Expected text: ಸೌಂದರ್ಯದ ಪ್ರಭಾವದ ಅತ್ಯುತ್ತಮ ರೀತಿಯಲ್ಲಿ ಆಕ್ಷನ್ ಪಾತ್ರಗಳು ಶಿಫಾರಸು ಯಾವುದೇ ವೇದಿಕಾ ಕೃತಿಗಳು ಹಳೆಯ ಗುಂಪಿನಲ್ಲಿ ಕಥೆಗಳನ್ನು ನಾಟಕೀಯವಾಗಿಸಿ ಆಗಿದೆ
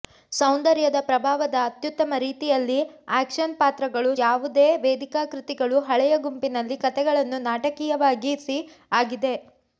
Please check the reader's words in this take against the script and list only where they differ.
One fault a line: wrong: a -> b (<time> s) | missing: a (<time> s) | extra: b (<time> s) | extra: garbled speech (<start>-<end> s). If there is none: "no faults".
missing: ಶಿಫಾರಸು (4.1 s)